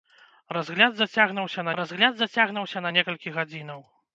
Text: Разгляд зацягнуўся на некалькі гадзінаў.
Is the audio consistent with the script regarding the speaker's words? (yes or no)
no